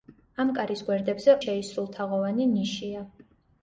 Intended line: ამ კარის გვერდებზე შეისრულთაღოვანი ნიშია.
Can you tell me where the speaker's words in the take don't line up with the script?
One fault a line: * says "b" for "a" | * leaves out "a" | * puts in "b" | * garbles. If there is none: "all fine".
all fine